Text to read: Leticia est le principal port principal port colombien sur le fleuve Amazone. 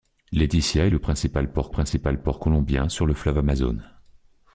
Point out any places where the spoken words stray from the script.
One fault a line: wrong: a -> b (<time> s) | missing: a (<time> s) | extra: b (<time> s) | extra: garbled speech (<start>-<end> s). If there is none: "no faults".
no faults